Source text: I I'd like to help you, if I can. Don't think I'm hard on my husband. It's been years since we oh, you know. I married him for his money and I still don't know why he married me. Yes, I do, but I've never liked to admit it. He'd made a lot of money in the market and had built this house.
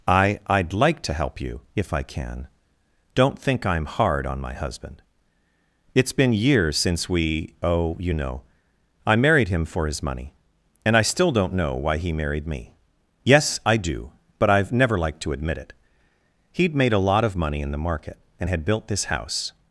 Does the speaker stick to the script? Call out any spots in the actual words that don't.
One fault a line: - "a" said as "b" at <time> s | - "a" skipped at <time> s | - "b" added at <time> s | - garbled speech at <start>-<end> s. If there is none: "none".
none